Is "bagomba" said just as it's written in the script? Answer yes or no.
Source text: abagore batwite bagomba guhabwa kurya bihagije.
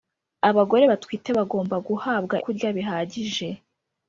yes